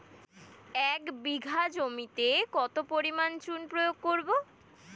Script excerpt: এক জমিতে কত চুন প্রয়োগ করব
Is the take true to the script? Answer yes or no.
no